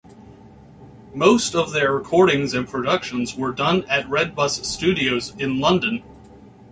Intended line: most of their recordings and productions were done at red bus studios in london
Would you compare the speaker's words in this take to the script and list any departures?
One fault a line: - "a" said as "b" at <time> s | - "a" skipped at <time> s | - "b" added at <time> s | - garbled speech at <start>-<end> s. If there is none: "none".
none